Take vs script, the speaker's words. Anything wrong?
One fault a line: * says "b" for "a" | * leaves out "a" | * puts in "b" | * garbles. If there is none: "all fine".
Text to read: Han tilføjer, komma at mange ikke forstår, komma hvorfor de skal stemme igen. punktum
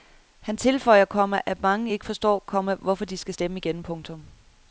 all fine